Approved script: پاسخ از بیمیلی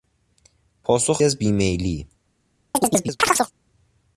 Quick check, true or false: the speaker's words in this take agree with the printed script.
true